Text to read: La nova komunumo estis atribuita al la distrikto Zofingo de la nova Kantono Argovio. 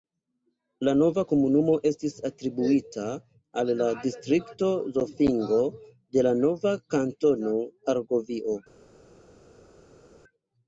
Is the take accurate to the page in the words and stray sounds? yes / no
yes